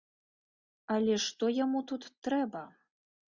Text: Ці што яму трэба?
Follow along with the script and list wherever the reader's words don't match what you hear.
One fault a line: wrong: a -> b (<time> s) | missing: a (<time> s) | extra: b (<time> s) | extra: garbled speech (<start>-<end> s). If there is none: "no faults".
wrong: Ці -> Але (0.9 s)
extra: тут (1.9 s)